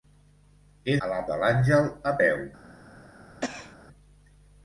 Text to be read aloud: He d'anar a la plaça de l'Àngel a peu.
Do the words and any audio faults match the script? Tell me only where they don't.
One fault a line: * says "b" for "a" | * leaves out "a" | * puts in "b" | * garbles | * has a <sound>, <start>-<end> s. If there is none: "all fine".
* leaves out "d'anar"
* leaves out "plaça"
* has a cough, 3.4-3.8 s